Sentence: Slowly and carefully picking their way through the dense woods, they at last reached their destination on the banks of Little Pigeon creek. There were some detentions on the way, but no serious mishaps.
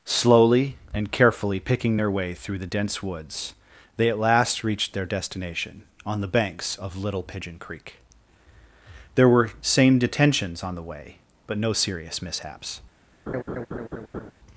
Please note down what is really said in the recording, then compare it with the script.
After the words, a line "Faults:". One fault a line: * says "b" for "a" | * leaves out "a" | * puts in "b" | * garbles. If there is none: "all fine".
Slowly and carefully picking their way through the dense woods, they at last reached their destination on the banks of Little Pigeon creek. There were same detentions on the way, but no serious mishaps.
Faults:
* says "same" for "some"